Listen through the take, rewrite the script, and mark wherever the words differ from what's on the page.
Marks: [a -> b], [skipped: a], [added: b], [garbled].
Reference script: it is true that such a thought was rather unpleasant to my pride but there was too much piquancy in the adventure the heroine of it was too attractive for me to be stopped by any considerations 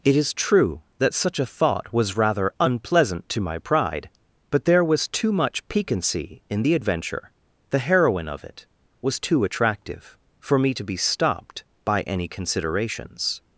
it is true that such a thought was rather unpleasant to my pride but there was too much piquancy in the adventure the heroine of it was too attractive for me to be stopped by any considerations